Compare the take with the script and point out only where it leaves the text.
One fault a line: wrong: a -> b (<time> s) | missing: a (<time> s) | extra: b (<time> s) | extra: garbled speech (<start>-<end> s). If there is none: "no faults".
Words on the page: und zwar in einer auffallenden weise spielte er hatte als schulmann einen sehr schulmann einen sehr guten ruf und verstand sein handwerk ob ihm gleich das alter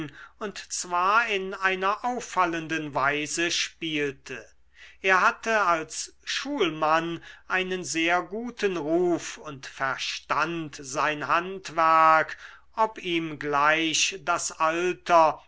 missing: schulmann einen sehr (8.2 s)